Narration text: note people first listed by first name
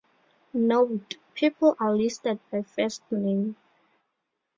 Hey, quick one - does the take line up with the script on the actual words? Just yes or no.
no